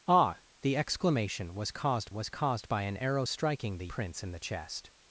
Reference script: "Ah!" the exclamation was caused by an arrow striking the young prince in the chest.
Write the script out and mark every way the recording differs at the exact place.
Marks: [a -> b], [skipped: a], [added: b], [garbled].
"Ah!" the exclamation was caused [added: was caused] by an arrow striking the [skipped: young] prince in the chest.